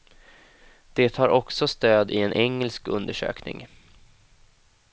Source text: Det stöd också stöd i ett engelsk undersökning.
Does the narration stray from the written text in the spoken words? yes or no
yes